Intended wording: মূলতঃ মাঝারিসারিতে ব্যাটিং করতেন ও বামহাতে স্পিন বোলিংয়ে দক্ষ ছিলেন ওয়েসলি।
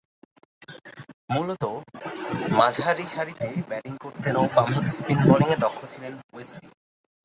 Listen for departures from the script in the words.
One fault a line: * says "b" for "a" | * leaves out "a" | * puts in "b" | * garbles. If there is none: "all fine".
all fine